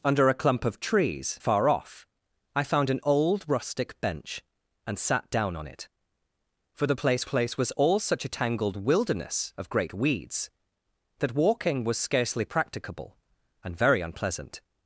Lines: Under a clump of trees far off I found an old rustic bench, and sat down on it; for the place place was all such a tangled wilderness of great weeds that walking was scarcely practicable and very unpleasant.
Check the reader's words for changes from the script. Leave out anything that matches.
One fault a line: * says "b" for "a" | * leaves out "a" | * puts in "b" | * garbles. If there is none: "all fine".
all fine